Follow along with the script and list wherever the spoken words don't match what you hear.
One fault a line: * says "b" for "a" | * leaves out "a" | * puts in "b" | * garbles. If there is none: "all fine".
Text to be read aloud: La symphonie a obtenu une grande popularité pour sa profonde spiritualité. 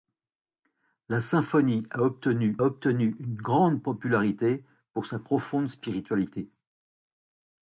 * puts in "obtenu"